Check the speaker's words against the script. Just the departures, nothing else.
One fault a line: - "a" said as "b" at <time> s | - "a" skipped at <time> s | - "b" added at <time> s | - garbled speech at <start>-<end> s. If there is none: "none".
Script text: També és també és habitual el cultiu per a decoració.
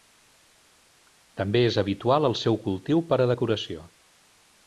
- "també és" skipped at 1.8 s
- "seu" added at 2.4 s